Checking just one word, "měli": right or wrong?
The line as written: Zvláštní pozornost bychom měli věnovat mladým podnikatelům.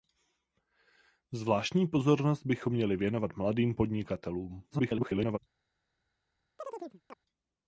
right